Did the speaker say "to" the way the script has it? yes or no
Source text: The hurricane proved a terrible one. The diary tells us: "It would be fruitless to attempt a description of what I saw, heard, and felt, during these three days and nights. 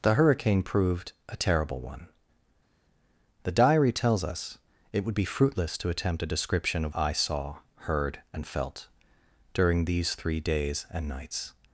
yes